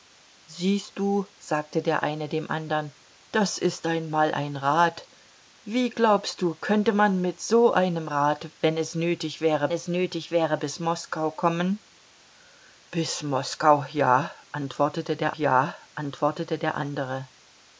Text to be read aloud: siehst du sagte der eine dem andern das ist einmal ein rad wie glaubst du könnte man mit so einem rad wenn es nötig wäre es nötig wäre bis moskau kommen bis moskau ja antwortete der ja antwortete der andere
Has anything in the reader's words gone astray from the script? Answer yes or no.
no